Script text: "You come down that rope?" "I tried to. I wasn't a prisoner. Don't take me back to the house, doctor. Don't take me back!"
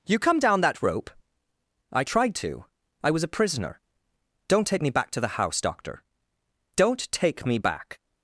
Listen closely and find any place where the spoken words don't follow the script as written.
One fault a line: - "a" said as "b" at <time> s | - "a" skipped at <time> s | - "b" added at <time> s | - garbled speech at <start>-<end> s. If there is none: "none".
- "wasn't" said as "was" at 3.1 s